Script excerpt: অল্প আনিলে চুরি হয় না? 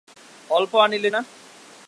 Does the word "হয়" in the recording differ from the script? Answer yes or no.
yes